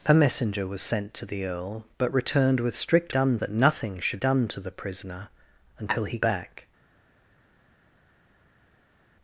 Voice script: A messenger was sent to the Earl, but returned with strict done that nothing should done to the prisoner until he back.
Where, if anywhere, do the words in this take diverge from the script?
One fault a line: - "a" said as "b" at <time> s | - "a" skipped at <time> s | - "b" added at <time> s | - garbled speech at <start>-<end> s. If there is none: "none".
none